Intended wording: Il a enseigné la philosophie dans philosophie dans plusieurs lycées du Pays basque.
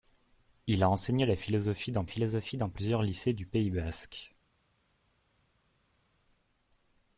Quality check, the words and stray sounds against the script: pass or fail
pass